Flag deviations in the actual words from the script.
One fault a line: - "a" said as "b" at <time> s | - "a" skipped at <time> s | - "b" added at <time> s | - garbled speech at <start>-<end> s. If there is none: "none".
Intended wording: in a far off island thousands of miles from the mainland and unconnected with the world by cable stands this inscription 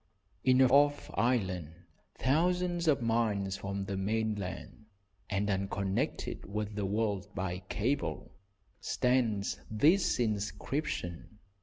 - "far" skipped at 0.7 s